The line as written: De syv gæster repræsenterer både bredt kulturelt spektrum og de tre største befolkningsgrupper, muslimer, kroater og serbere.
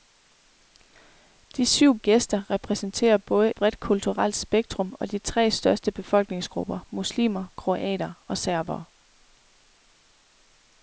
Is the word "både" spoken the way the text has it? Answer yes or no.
yes